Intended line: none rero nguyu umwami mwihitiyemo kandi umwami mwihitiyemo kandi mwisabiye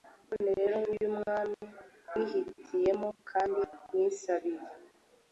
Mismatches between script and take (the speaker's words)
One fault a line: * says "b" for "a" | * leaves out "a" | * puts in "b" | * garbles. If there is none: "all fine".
* leaves out "umwami mwihitiyemo kandi"